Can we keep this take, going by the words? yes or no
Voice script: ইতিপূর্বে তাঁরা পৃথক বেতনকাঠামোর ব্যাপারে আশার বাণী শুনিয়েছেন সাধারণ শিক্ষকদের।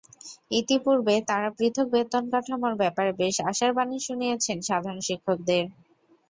no